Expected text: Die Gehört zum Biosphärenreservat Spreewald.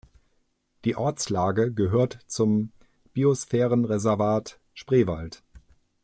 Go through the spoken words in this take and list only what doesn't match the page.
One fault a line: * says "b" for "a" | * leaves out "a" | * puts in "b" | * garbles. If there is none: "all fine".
* puts in "Ortslage"